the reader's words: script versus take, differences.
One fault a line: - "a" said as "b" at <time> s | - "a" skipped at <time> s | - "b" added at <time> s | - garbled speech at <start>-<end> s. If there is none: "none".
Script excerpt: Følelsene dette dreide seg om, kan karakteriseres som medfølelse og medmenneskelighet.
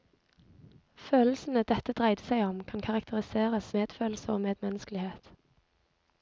- "som" skipped at 3.7 s